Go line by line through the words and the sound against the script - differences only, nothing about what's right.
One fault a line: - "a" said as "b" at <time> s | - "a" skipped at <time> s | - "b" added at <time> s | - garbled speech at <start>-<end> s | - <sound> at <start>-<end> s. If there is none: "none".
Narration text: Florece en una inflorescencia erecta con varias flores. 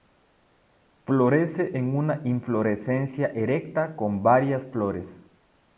none